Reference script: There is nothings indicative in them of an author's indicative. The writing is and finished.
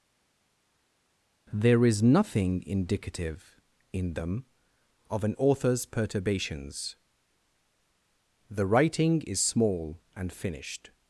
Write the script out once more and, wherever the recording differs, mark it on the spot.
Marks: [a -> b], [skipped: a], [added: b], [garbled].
There is [nothings -> nothing] indicative in them of an author's [indicative. -> perturbations] The writing is [added: small] and finished.